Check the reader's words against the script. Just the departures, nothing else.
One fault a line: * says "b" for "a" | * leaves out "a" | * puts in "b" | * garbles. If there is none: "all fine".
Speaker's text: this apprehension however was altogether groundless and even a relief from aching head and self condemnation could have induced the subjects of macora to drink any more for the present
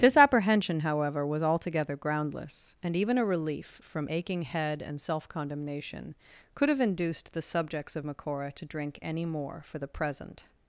all fine